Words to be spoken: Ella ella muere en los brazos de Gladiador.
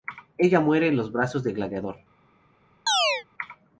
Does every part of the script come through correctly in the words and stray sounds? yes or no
no